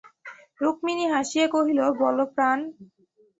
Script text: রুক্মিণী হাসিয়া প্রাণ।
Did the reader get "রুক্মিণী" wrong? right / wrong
right